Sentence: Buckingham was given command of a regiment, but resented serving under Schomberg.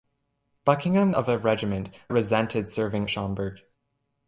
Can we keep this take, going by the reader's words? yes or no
no